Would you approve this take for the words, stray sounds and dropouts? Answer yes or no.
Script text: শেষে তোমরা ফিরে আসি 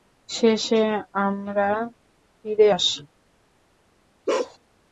no